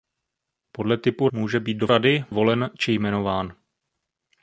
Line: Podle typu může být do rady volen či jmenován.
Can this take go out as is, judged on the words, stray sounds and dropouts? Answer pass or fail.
pass